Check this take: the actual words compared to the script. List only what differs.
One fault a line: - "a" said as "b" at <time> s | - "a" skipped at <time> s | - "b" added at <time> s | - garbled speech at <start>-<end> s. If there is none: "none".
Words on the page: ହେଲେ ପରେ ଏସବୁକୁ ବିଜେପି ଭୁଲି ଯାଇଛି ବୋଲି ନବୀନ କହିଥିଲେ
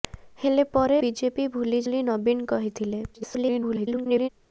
- "ଏସବୁକୁ" skipped at 1.0 s
- "ଯାଇଛି" skipped at 1.8 s
- garbled speech at 3.1-4.3 s